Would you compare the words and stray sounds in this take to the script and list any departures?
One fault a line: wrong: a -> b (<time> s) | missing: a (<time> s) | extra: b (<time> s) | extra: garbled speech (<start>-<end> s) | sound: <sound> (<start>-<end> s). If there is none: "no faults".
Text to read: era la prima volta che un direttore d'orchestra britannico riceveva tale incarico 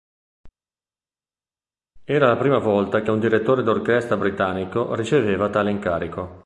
no faults